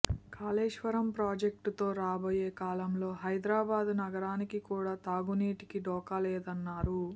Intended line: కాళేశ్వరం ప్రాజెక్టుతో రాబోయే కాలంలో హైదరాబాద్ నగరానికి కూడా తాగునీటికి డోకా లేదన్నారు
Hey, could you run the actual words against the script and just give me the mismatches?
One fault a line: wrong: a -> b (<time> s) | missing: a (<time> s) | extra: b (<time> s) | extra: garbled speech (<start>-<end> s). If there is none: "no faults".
no faults